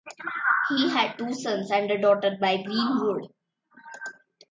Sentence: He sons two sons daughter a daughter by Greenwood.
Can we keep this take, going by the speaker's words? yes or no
no